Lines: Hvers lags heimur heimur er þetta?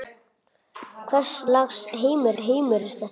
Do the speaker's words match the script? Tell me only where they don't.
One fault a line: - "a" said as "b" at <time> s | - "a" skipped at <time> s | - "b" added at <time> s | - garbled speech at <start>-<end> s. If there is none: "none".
none